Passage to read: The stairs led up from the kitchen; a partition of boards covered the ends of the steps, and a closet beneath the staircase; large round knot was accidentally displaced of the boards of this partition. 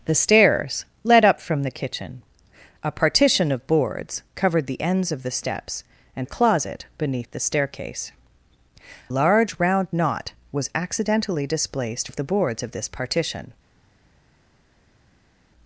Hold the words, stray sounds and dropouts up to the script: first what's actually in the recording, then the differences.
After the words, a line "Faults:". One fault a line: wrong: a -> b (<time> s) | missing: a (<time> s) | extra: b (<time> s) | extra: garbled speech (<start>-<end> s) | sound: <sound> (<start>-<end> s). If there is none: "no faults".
The stairs led up from the kitchen; a partition of boards covered the ends of the steps, and a closet beneath the staircase; large round knot was accidentally displaced of the boards of this partition.
Faults:
no faults